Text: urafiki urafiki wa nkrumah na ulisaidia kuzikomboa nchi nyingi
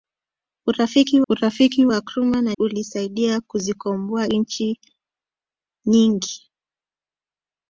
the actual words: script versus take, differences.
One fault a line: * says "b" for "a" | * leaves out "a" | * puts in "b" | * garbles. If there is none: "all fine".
all fine